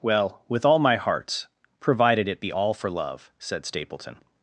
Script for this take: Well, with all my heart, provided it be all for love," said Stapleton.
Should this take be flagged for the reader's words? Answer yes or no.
yes